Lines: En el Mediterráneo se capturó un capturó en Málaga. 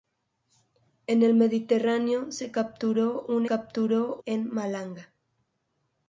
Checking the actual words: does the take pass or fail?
pass